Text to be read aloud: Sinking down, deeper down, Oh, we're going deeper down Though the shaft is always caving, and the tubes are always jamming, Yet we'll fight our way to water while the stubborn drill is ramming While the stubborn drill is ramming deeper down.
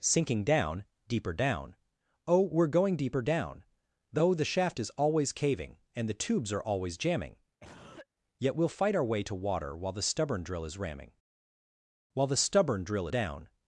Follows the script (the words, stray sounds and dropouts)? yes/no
no